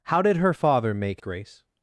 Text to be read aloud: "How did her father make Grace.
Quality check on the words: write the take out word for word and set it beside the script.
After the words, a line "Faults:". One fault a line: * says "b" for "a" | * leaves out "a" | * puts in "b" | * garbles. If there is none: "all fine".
"How did her father make Grace.
Faults:
all fine